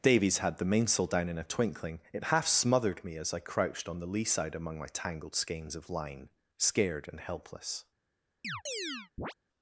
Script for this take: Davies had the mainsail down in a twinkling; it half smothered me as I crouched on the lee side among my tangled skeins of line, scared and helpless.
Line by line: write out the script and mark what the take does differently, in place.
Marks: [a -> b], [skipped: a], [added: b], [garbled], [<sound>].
Davies had the mainsail down in a twinkling; it half smothered me as I crouched on the lee side among my tangled skeins of line, scared and helpless. [chirp]